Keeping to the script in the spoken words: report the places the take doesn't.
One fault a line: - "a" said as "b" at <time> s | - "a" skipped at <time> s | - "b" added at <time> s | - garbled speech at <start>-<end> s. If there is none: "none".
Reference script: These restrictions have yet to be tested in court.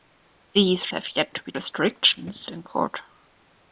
- "restrictions" skipped at 0.9 s
- "tested" said as "restrictions" at 1.5 s